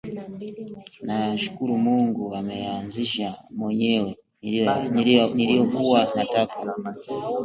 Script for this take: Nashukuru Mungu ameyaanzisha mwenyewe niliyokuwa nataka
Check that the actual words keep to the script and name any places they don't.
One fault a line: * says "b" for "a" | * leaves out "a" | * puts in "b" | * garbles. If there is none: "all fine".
all fine